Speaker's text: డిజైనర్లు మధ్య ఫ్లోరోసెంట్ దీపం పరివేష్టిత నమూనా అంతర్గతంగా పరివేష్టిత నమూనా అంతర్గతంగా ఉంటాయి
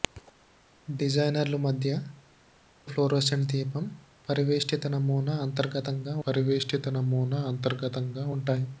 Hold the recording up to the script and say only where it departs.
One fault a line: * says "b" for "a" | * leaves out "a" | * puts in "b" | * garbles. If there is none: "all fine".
all fine